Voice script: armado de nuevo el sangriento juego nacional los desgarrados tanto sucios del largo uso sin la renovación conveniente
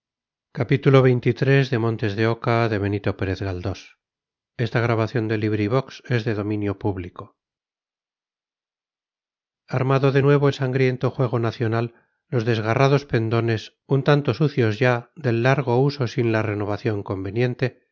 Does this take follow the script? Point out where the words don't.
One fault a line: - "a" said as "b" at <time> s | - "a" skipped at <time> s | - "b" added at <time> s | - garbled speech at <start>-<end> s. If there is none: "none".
- "pendones un" added at 13.0 s
- "ya" added at 14.8 s